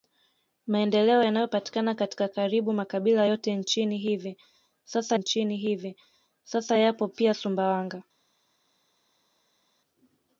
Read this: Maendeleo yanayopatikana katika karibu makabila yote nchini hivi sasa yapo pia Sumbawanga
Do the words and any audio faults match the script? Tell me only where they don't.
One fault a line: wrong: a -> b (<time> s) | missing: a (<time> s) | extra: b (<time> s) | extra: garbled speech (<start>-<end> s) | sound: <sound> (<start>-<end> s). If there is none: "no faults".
extra: nchini hivi sasa (5.1 s)